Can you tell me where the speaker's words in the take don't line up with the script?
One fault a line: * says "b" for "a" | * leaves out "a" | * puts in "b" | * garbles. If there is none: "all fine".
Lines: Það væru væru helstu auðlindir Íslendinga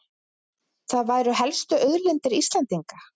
* leaves out "væru"